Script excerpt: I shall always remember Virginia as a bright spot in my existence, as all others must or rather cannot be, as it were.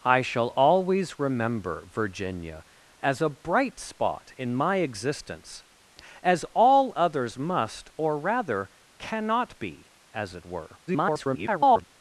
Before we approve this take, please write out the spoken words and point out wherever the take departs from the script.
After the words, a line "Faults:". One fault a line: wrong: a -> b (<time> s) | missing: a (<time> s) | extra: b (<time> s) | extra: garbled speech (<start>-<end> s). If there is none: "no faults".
I shall always remember Virginia as a bright spot in my existence, as all others must or rather cannot be, as it were. [garbled]
Faults:
extra: garbled speech (10.9-11.8 s)